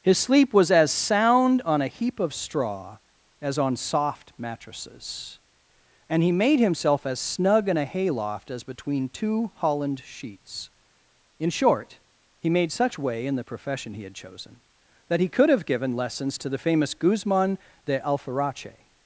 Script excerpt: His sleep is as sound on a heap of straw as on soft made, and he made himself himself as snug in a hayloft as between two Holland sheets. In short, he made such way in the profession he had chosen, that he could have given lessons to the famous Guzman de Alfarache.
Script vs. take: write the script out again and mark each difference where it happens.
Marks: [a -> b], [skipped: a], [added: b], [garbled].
His sleep [is -> was] as sound on a heap of straw as on soft [made, -> mattresses] and he made himself [skipped: himself] as snug in a hayloft as between two Holland sheets. In short, he made such way in the profession he had chosen, that he could have given lessons to the famous Guzman de Alfarache.